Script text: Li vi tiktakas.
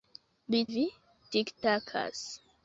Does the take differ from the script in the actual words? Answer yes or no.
no